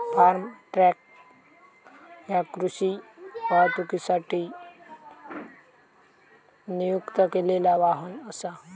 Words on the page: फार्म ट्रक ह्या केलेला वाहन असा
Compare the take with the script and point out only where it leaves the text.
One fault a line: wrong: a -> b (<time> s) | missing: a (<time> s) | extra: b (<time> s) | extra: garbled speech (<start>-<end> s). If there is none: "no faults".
extra: कृषी वाहतुकीसाठी नियुक्त (2.5 s)